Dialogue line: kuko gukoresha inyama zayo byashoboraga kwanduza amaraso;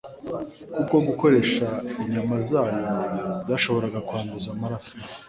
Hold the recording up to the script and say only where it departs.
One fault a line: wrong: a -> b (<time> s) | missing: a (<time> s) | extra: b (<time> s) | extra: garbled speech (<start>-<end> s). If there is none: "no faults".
no faults